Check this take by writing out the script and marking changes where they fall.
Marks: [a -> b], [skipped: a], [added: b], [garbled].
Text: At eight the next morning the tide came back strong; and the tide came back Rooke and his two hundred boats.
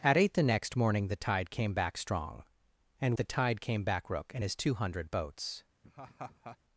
At eight the next morning the tide came back strong; and the tide came back Rooke and his two hundred boats.